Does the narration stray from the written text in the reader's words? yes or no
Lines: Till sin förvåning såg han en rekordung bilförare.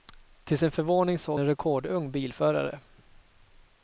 yes